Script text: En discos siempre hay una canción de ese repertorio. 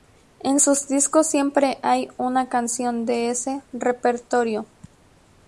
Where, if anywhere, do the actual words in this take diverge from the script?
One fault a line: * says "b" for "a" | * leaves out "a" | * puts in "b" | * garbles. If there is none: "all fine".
* puts in "sus"